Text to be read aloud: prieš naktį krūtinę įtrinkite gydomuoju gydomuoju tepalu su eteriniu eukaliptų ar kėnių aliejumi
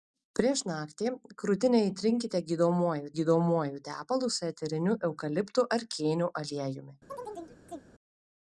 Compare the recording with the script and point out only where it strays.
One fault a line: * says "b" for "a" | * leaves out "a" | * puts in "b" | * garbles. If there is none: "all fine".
all fine